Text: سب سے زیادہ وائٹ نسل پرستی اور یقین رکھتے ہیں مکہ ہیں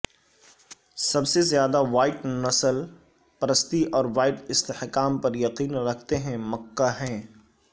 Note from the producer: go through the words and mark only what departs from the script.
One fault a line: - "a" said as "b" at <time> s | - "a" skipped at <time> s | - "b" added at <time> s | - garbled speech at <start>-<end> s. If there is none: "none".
- "وائٹ استحکام پر" added at 4.2 s